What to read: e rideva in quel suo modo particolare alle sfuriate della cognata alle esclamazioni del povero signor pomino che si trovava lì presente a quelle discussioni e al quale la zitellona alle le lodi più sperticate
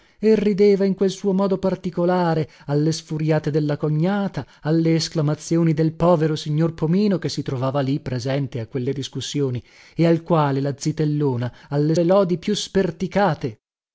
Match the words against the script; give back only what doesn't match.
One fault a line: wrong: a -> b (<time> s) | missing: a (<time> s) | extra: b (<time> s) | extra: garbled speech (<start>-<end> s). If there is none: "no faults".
no faults